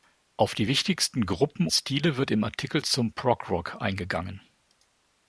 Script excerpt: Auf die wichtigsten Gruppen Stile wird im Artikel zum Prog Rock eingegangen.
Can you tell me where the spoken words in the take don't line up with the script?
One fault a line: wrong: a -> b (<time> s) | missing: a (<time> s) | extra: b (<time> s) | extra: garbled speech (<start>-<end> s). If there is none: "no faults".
no faults